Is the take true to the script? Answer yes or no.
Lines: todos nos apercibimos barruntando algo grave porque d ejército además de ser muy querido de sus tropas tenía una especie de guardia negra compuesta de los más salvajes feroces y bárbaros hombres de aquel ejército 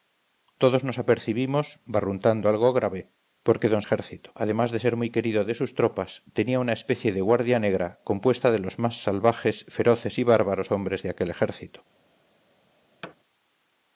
yes